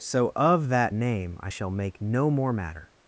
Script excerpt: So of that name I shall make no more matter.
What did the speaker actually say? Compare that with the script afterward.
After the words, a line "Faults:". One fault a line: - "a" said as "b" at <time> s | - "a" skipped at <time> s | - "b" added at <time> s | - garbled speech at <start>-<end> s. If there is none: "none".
So of that name I shall make no more matter.
Faults:
none